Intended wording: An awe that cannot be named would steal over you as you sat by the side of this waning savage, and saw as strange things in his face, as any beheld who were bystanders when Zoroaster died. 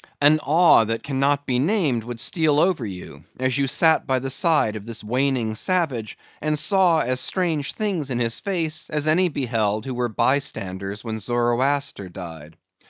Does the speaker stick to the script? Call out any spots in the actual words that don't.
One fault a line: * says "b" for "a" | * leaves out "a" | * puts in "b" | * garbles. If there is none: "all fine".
all fine